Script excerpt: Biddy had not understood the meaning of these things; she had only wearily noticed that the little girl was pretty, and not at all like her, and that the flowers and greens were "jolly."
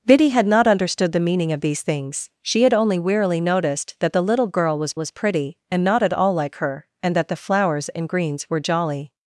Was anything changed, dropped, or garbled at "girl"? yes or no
no